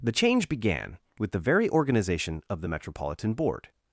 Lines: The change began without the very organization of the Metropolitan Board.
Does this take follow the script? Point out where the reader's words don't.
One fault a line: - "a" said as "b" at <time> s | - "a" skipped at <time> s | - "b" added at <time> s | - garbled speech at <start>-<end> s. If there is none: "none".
- "without" said as "with" at 1.2 s